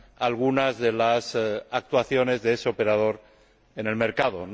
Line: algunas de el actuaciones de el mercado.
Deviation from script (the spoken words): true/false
true